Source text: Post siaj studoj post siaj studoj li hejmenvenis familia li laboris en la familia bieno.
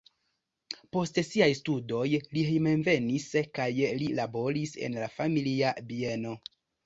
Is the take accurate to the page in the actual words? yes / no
no